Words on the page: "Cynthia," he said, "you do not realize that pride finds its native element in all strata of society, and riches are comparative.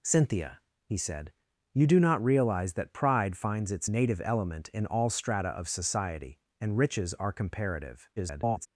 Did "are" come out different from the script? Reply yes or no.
no